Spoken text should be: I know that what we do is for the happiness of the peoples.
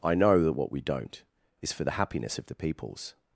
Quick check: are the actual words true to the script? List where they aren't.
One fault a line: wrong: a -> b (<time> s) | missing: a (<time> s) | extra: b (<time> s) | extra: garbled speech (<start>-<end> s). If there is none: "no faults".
wrong: do -> don't (0.8 s)